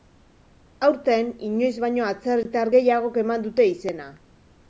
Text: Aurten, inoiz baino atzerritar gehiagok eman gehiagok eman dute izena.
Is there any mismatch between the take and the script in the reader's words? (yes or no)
yes